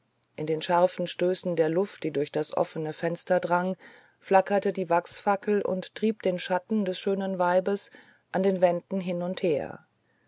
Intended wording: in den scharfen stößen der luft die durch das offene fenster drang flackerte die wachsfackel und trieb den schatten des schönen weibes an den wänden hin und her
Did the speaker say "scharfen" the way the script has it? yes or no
yes